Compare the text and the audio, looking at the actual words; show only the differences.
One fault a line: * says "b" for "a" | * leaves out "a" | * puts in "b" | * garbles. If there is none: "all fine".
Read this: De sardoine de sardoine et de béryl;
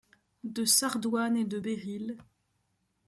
* leaves out "de sardoine"